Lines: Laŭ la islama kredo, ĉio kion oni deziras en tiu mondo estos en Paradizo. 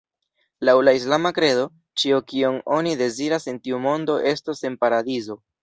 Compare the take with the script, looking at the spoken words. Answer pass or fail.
pass